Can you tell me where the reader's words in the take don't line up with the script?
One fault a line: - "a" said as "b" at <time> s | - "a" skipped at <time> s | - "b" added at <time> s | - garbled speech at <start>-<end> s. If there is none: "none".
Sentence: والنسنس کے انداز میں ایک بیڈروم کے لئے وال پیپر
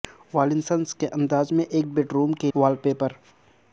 - "لئے" skipped at 2.5 s